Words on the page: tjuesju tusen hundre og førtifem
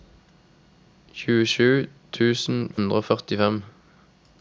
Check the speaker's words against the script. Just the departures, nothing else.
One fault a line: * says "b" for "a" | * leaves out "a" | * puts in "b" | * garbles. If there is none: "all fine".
all fine